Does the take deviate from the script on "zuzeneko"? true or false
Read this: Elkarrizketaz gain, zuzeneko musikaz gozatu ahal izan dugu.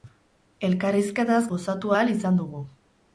true